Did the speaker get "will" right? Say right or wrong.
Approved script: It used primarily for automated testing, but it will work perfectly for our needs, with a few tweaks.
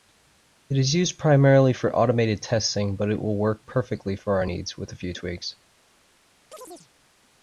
right